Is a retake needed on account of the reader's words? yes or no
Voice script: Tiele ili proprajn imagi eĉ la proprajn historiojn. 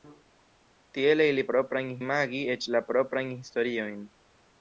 no